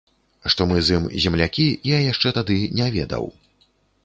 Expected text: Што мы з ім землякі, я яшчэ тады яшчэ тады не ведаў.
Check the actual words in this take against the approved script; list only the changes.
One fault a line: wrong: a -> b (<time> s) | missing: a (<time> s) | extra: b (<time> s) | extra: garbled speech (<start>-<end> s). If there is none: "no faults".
missing: яшчэ тады (2.6 s)